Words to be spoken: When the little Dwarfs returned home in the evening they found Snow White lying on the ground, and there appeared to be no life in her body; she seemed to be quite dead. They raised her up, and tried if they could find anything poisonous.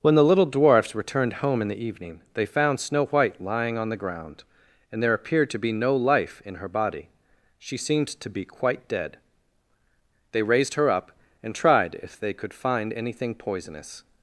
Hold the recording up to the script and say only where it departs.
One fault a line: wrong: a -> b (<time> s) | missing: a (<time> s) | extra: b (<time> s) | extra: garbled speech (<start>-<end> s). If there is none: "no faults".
no faults